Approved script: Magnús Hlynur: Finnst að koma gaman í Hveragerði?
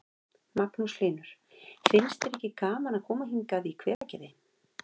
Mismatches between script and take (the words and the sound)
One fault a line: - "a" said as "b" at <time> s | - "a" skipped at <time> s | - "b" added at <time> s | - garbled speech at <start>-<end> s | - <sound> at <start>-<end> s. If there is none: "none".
- "þér ekki gaman" added at 2.2 s
- "gaman" said as "hingað" at 3.4 s
- dropout at 3.9-4.0 s